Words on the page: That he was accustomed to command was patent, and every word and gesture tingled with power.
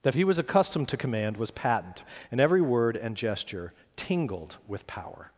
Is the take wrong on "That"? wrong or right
right